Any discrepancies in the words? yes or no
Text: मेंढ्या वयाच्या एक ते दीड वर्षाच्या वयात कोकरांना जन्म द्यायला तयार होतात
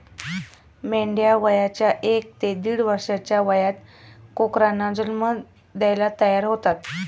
no